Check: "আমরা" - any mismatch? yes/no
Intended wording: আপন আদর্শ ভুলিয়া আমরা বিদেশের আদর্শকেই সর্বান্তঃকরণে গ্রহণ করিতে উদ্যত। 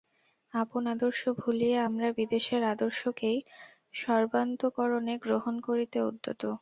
no